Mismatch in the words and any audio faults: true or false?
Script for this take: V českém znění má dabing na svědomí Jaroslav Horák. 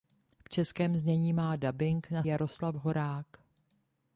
true